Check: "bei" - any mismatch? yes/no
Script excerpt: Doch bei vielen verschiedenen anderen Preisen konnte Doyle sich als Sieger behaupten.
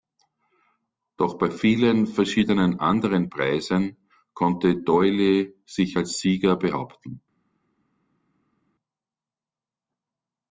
no